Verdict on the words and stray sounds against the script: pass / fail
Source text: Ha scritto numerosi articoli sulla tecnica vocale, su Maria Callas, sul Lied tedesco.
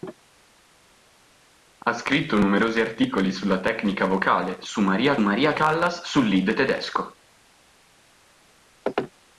fail